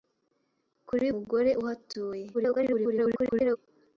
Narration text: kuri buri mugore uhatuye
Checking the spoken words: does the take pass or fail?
fail